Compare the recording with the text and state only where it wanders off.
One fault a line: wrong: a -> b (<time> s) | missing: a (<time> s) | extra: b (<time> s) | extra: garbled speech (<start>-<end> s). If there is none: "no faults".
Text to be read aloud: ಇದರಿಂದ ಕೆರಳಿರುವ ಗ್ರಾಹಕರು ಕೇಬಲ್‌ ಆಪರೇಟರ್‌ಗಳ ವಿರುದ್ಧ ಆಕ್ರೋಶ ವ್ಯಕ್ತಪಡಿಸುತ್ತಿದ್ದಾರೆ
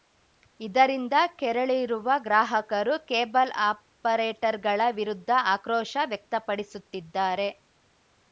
no faults